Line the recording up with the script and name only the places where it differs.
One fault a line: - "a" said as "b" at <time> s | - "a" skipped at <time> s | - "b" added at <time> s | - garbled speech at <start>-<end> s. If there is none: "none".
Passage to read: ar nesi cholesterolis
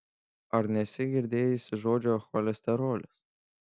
- "girdėjusi žodžio" added at 1.1 s